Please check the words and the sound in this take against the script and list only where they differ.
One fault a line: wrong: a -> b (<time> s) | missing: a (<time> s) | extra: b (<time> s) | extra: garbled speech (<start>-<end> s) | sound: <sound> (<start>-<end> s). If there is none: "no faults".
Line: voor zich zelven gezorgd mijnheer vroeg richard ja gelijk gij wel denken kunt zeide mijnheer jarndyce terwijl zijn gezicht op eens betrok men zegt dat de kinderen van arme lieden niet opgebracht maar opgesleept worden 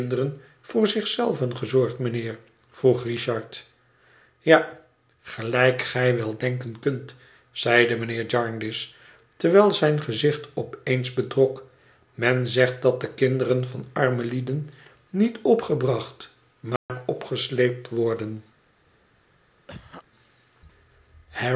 sound: dropout (16.8-16.9 s)
sound: cough (19.7-20.0 s)